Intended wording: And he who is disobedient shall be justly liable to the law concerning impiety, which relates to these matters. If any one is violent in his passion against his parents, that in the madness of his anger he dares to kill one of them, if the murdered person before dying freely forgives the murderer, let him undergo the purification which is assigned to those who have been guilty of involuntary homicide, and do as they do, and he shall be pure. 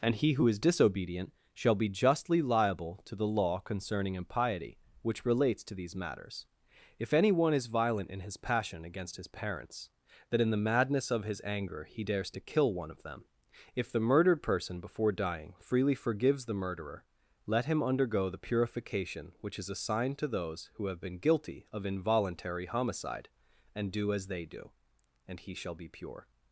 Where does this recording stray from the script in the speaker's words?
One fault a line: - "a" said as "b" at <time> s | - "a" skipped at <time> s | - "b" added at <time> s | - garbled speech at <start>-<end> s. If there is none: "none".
none